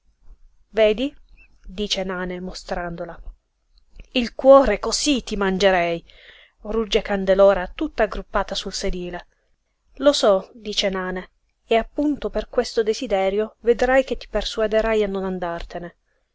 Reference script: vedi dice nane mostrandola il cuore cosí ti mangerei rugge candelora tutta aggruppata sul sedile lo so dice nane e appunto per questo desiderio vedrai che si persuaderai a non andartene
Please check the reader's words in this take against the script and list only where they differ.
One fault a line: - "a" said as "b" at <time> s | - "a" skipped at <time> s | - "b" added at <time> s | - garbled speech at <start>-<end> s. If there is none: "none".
- "si" said as "ti" at 14.2 s